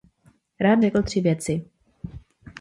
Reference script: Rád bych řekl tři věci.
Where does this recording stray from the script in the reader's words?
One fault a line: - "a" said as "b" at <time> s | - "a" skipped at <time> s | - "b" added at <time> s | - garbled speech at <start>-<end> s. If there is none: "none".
- "bych" skipped at 0.8 s